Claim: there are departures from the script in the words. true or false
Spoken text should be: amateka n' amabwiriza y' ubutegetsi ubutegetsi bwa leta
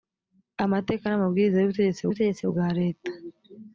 false